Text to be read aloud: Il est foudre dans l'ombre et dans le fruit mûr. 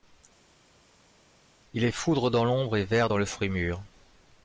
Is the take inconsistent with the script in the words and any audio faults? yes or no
yes